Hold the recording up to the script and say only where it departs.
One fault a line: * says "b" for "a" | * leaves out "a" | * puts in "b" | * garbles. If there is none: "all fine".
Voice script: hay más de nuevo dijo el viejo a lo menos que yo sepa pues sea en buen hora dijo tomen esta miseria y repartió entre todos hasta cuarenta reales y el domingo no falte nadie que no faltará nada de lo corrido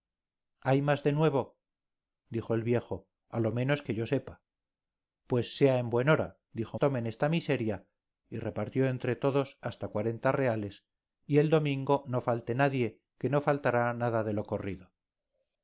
all fine